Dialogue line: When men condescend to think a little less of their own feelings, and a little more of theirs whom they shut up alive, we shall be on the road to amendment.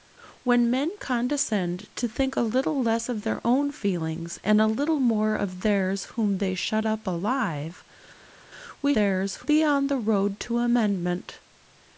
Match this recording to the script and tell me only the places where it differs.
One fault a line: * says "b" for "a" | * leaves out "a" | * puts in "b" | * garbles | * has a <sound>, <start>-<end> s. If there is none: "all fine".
* says "theirs" for "shall"